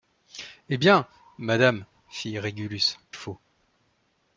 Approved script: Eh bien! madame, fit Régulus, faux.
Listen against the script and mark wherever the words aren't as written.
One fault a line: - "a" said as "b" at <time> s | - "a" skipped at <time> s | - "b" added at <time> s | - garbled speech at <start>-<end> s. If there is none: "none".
none